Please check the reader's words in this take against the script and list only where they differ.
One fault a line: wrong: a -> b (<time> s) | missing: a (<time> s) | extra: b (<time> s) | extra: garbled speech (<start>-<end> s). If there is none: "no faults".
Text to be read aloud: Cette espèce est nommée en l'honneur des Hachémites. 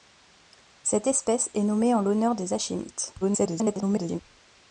extra: garbled speech (3.2-4.2 s)